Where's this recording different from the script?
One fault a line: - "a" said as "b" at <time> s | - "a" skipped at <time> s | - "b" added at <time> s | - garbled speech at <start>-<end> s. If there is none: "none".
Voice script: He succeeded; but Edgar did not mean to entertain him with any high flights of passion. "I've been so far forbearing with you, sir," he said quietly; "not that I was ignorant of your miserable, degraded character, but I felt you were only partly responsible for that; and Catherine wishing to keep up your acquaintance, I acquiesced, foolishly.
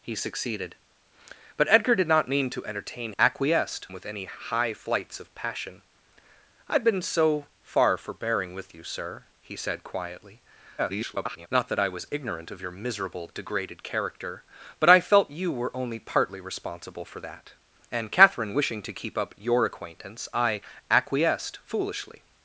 - "him" said as "acquiesced" at 3.2 s
- garbled speech at 10.8-11.5 s